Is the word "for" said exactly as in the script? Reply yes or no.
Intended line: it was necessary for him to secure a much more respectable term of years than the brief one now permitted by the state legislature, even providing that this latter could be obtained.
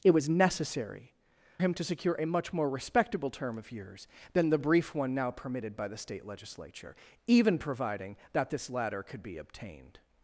no